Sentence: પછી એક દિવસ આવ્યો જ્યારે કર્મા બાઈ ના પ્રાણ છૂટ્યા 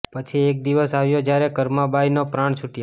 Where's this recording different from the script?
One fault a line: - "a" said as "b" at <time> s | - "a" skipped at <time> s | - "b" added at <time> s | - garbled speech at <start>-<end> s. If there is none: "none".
none